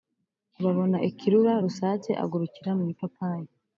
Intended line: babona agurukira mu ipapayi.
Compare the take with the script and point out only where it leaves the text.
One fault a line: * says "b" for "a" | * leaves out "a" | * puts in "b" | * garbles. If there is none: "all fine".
* puts in "ikirura rusake"